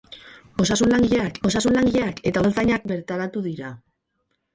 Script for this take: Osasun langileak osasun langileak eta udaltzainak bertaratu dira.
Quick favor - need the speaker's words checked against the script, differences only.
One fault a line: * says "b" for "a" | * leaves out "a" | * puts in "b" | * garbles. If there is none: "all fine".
all fine